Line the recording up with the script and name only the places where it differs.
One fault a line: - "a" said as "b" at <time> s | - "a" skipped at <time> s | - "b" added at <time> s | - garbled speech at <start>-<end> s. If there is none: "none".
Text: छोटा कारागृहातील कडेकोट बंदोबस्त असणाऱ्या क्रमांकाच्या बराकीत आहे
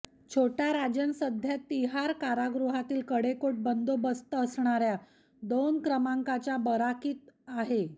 - "राजन सध्या तिहार" added at 0.7 s
- "दोन" added at 5.4 s